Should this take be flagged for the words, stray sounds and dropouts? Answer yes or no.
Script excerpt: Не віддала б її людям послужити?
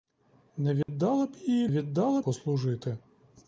yes